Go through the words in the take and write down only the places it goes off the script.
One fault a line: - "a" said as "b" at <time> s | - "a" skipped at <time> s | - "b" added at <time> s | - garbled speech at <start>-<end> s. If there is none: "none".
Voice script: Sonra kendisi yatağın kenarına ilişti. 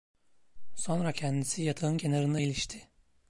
none